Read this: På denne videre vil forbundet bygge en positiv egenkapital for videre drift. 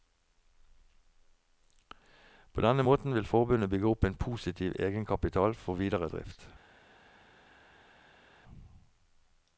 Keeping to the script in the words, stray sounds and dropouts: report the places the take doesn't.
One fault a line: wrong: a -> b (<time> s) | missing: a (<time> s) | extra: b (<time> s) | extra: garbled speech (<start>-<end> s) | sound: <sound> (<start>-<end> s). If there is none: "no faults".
wrong: videre -> måten (2.8 s)
extra: opp (3.9 s)